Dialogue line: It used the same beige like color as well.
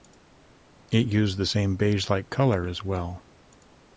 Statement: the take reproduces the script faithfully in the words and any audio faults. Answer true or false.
true